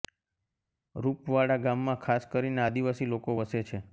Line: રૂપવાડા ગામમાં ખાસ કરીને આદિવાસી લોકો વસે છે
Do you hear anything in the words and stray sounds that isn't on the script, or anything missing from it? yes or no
no